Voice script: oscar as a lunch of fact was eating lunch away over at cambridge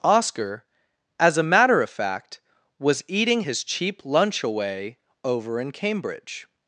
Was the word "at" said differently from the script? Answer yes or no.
yes